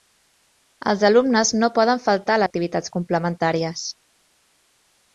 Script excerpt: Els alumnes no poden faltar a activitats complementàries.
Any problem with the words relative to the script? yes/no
no